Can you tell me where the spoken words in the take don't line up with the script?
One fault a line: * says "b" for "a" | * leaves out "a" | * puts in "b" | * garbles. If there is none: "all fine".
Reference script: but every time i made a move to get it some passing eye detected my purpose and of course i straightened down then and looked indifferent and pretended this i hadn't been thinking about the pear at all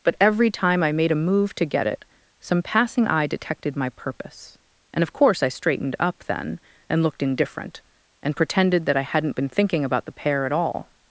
* says "up" for "down"
* says "that" for "this"